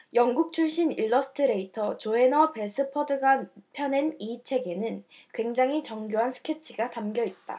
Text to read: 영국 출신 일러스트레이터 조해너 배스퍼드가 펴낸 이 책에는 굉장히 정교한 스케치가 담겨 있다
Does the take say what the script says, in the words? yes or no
yes